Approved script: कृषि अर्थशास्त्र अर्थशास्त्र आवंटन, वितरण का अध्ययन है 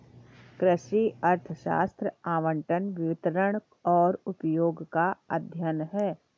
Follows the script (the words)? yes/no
no